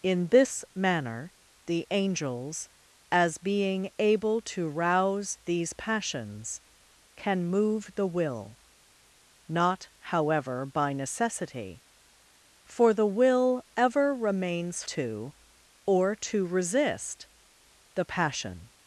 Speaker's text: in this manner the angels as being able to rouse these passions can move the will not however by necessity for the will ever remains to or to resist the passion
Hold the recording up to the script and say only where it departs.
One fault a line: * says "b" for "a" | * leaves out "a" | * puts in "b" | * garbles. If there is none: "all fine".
all fine